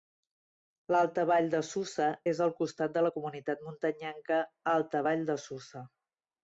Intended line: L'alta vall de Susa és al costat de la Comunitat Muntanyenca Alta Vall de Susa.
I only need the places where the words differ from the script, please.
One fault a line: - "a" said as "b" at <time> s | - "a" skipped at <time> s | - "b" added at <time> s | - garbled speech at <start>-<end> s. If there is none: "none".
none